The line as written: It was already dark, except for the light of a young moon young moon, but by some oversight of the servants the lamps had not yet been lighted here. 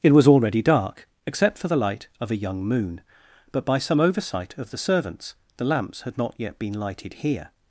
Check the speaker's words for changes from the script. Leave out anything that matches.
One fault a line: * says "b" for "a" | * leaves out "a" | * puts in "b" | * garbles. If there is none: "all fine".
* leaves out "young moon"